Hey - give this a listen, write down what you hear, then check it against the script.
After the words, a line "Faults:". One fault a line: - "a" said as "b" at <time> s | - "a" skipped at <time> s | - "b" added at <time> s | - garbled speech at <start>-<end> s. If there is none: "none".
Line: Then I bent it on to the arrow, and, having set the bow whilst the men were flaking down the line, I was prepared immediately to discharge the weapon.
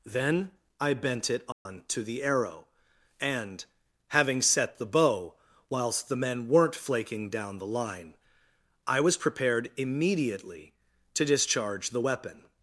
Then I bent it on to the arrow, and, having set the bow whilst the men weren't flaking down the line, I was prepared immediately to discharge the weapon.
Faults:
- "were" said as "weren't" at 6.5 s